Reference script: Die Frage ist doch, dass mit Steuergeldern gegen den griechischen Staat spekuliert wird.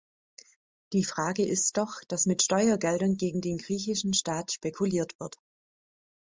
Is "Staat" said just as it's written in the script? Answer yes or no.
yes